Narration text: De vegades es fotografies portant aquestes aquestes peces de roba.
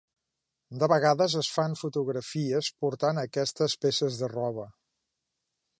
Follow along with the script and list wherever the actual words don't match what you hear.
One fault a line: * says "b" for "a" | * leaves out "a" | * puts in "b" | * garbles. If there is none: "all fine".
* puts in "fan"
* leaves out "aquestes"